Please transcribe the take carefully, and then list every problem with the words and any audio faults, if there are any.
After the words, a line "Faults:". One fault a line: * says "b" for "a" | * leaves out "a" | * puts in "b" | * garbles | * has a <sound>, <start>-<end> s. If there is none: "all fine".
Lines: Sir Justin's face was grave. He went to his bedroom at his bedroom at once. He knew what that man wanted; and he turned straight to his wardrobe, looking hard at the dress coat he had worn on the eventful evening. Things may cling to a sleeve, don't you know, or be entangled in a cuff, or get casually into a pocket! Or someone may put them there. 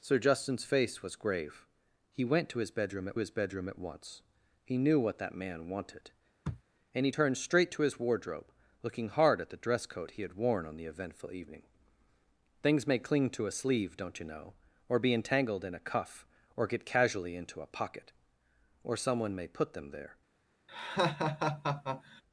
Sir Justin's face was grave. He went to his bedroom at his bedroom at once. He knew what that man wanted; and he turned straight to his wardrobe, looking hard at the dress coat he had worn on the eventful evening. Things may cling to a sleeve, don't you know, or be entangled in a cuff, or get casually into a pocket! Or someone may put them there.
Faults:
* has a sniff, 6.4-6.6 s
* has a laugh, 20.7-22.2 s